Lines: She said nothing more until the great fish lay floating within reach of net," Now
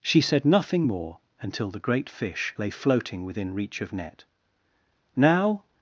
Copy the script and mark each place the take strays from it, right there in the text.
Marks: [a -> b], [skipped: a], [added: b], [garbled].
She said nothing more until the great fish lay floating within reach of net," Now